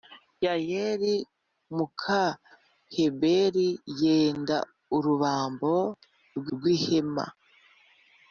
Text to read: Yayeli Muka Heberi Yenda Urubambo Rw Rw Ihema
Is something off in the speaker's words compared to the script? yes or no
no